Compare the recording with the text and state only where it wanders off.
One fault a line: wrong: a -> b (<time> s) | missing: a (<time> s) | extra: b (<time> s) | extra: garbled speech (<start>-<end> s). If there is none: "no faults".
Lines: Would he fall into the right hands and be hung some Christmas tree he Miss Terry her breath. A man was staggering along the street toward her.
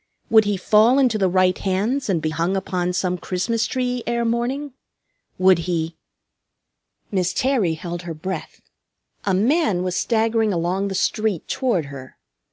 extra: upon (2.5 s)
extra: ere morning Would (4.1 s)
extra: held (7.7 s)